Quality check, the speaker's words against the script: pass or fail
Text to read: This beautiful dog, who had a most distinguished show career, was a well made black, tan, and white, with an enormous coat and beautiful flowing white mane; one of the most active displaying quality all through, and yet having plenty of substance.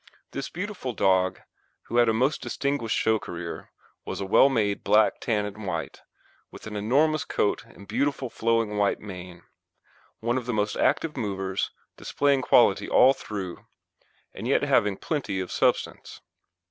fail